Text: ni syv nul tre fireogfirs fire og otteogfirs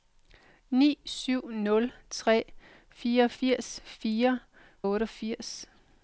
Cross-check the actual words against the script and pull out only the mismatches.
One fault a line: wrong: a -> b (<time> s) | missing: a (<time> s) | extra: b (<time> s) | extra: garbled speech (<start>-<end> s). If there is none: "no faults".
no faults